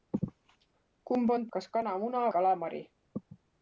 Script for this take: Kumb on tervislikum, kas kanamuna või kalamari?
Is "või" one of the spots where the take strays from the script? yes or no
yes